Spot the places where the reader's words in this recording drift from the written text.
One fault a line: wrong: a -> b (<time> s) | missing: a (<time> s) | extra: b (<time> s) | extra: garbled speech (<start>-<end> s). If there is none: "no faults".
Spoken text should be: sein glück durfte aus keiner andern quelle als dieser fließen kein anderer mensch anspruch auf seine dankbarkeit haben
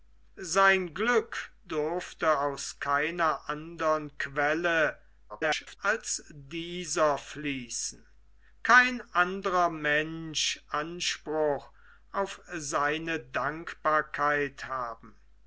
extra: garbled speech (5.3-5.8 s)